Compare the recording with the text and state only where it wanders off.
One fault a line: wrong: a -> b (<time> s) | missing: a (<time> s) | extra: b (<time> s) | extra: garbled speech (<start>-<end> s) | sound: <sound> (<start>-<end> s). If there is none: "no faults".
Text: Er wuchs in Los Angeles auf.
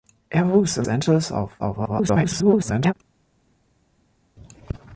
missing: Los (0.9 s)
extra: garbled speech (1.6-2.9 s)